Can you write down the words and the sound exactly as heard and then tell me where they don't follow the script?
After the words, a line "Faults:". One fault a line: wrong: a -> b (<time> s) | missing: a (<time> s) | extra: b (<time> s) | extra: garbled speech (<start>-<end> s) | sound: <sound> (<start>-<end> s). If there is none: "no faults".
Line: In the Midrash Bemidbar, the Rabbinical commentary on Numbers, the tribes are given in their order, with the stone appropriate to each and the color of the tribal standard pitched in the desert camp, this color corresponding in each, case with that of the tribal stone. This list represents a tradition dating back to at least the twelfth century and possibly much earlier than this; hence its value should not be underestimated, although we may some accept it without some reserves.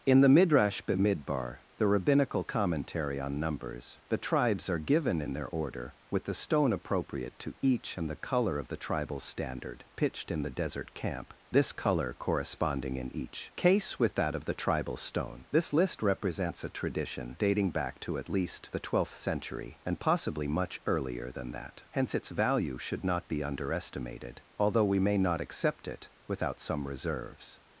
In the Midrash Bemidbar, the Rabbinical commentary on Numbers, the tribes are given in their order, with the stone appropriate to each and the color of the tribal standard pitched in the desert camp, this color corresponding in each, case with that of the tribal stone. This list represents a tradition dating back to at least the twelfth century and possibly much earlier than that; hence its value should not be underestimated, although we may not accept it without some reserves.
Faults:
wrong: this -> that (21.5 s)
wrong: some -> not (25.2 s)